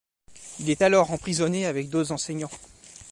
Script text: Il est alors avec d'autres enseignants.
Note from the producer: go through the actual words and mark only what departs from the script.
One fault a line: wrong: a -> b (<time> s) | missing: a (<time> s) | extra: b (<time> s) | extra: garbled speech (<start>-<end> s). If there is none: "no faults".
extra: emprisonné (1.1 s)